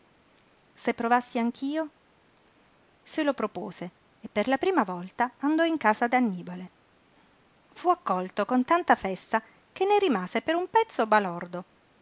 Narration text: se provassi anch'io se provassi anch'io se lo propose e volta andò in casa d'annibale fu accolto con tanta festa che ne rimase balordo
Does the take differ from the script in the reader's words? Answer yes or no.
yes